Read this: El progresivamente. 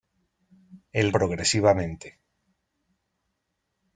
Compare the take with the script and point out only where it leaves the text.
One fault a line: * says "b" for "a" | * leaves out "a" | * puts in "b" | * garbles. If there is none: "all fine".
all fine